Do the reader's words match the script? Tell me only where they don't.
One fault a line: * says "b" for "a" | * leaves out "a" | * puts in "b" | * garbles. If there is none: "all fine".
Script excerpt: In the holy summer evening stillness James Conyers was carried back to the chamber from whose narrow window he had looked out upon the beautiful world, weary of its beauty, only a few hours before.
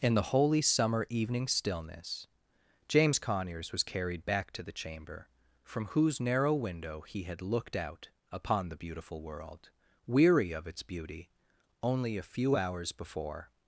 all fine